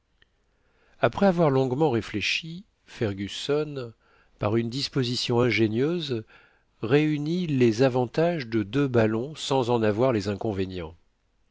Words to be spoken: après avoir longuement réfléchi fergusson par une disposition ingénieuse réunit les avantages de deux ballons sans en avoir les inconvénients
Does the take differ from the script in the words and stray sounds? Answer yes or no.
no